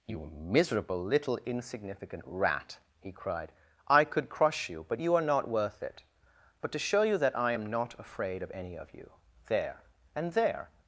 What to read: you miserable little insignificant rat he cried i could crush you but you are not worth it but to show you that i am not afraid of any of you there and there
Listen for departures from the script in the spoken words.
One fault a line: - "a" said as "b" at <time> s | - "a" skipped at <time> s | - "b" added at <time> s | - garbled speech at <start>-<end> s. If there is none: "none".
none